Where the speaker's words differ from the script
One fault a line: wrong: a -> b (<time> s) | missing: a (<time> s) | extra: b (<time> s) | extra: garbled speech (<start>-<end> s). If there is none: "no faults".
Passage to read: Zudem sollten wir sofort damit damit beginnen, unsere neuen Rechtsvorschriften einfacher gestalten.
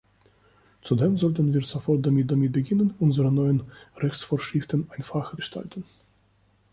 no faults